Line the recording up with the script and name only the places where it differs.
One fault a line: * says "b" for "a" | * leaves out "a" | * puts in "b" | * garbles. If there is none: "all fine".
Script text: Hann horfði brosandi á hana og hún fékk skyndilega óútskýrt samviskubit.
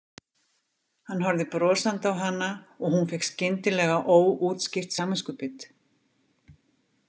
all fine